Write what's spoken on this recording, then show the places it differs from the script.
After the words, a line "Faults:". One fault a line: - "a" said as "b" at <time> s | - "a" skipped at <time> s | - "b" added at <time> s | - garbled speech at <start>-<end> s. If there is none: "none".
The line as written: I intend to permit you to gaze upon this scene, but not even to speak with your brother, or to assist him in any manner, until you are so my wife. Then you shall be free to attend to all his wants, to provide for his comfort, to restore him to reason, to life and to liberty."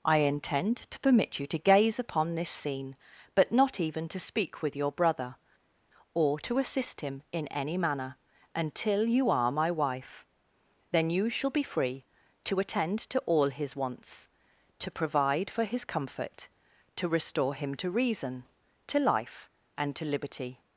I intend to permit you to gaze upon this scene, but not even to speak with your brother, or to assist him in any manner, until you are my wife. Then you shall be free to attend to all his wants, to provide for his comfort, to restore him to reason, to life and to liberty."
Faults:
- "so" skipped at 9.5 s